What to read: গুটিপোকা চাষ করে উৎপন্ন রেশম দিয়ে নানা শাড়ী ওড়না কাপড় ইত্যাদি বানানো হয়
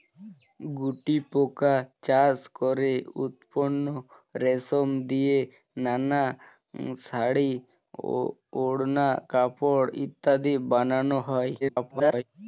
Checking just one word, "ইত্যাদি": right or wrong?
right